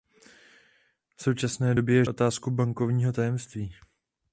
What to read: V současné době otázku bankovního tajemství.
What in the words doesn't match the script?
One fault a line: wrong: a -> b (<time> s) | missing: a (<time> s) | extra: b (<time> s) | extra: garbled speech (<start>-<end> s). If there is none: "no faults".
no faults